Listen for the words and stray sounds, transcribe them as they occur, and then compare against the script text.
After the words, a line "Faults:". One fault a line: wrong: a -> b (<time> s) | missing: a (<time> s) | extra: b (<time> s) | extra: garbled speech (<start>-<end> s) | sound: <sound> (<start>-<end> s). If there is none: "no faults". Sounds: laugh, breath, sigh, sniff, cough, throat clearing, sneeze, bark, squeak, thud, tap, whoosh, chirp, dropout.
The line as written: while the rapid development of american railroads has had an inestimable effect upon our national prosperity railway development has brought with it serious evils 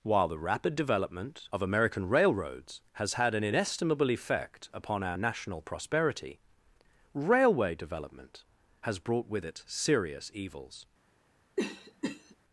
while the rapid development of american railroads has had an inestimable effect upon our national prosperity railway development has brought with it serious evils
Faults:
sound: cough (11.6-12.4 s)